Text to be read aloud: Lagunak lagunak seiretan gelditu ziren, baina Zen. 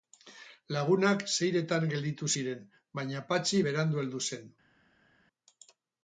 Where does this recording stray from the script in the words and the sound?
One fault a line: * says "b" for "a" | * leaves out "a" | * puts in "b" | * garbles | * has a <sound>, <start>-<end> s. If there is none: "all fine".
* leaves out "lagunak"
* puts in "Patxi berandu heldu"